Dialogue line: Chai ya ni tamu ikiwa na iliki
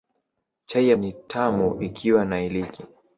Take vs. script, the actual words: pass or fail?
pass